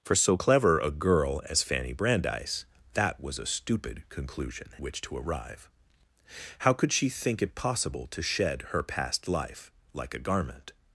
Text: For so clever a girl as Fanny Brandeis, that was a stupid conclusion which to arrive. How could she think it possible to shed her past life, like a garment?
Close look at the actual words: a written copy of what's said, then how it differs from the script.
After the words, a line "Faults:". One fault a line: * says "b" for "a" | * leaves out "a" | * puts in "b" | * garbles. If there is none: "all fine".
For so clever a girl as Fanny Brandeis, that was a stupid conclusion which to arrive. How could she think it possible to shed her past life, like a garment?
Faults:
all fine